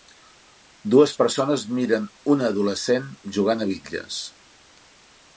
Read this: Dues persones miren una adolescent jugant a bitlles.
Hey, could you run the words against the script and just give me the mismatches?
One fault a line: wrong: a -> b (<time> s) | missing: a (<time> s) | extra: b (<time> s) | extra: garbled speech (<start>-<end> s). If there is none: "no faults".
no faults